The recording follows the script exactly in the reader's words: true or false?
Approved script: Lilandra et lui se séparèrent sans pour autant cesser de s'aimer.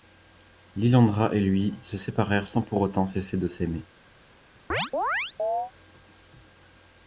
true